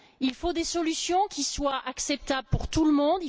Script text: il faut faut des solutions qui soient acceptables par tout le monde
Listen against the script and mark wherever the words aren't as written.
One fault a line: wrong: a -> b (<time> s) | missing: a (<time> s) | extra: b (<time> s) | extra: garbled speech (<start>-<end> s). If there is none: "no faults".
missing: faut (0.5 s)
wrong: par -> pour (2.5 s)